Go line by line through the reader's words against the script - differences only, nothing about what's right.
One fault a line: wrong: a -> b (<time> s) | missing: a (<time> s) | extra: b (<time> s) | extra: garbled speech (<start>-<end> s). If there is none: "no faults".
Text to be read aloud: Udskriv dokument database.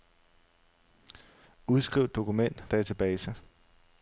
no faults